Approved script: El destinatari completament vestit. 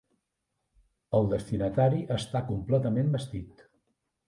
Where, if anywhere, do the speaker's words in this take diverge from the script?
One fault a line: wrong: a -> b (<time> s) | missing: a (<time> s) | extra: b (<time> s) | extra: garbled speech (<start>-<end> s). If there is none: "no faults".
extra: està (2.2 s)